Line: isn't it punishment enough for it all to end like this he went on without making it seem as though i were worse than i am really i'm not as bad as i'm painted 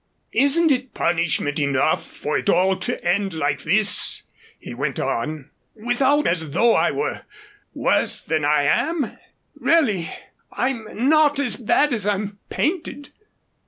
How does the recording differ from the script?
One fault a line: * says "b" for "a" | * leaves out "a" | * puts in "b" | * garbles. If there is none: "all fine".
* leaves out "making it seem"